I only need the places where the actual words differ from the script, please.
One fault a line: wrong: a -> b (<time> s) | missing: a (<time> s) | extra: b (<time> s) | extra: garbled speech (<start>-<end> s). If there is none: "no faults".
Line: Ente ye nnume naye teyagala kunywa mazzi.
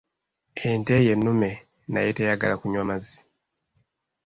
no faults